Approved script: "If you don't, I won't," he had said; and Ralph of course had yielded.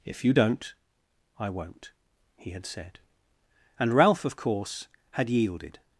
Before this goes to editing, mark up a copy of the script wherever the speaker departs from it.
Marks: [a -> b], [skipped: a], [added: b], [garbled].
"If you don't, I won't," he had said; and Ralph of course had yielded.